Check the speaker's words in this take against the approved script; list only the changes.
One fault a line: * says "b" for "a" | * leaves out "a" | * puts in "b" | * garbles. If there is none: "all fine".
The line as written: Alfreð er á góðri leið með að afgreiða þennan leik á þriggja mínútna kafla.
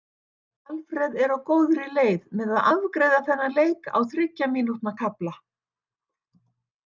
all fine